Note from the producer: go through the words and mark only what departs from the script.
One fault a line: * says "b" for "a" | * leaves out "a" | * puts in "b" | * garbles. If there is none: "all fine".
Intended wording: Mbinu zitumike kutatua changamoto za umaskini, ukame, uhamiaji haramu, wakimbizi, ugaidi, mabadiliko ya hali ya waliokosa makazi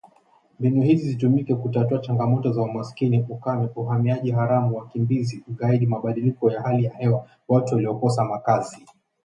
* puts in "hizi"
* puts in "hewa watu"